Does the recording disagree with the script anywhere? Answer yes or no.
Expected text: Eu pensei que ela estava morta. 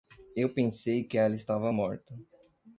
no